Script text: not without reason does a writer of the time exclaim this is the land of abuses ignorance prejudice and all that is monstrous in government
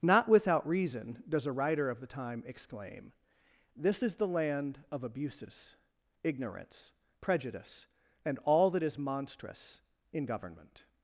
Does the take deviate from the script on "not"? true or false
false